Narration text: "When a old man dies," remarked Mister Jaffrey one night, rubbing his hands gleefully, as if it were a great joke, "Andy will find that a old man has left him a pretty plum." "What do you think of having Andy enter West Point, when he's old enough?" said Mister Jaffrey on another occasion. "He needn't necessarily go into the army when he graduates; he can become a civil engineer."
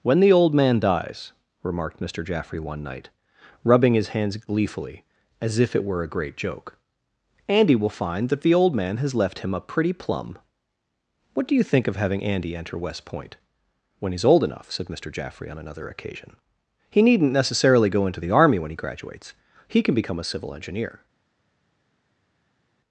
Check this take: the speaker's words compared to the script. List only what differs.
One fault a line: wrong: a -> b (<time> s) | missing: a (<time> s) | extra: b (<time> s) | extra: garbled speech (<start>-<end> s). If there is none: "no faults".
wrong: a -> the (0.2 s)
wrong: a -> the (8.4 s)